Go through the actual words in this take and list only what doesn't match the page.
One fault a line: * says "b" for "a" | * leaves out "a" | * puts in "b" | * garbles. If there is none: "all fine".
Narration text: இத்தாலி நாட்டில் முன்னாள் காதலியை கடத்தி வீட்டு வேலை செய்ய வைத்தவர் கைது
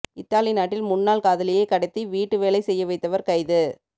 all fine